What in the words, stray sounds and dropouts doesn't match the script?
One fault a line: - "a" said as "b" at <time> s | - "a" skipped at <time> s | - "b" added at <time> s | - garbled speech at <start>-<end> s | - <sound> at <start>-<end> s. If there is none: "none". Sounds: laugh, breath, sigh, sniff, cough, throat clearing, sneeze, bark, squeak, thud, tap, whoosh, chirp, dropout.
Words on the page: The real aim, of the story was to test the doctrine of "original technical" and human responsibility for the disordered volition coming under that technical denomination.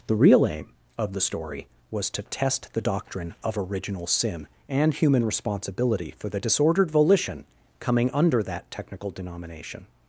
- "technical" said as "sin" at 4.1 s